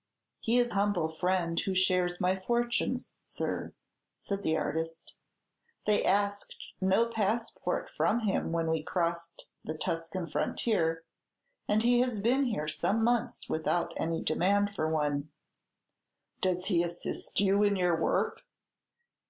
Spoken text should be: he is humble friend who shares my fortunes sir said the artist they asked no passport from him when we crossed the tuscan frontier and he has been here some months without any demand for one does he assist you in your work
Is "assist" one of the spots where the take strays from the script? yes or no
no